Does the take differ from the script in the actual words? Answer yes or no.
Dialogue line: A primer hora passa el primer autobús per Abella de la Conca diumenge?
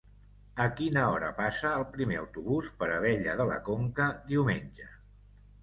yes